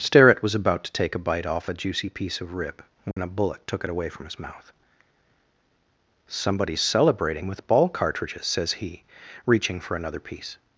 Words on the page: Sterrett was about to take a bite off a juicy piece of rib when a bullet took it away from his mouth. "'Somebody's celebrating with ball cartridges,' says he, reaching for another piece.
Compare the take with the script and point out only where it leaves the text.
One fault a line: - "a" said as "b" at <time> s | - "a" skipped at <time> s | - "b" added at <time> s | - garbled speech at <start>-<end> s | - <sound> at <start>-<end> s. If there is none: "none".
- dropout at 3.1-3.2 s